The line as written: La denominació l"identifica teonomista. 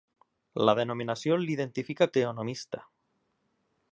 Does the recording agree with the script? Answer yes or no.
yes